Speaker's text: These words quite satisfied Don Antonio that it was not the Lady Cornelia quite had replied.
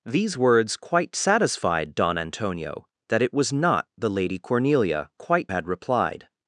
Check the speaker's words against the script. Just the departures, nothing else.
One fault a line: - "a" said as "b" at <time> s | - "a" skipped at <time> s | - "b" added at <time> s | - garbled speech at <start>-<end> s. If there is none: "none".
none